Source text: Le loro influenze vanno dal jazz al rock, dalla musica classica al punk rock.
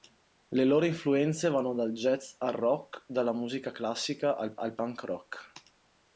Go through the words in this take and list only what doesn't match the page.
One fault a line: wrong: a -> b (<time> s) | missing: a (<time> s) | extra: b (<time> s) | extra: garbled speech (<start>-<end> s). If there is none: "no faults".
extra: al (4.6 s)